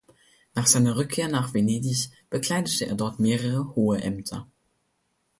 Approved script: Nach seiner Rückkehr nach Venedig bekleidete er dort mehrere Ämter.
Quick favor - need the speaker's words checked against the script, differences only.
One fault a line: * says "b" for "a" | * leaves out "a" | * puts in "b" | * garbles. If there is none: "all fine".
* puts in "hohe"